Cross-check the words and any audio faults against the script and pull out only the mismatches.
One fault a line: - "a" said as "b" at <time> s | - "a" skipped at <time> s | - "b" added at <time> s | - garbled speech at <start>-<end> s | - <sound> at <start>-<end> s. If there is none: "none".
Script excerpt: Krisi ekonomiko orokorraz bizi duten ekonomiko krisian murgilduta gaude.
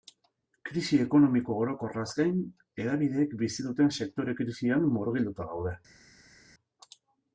- "gain hedabideek" added at 2.2 s
- "ekonomiko" said as "sektore" at 4.0 s